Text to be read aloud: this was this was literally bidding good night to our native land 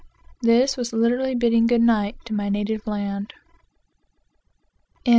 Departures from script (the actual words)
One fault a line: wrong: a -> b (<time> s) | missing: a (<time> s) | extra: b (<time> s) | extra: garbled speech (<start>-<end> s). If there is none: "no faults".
missing: this was (0.9 s)
wrong: our -> my (2.3 s)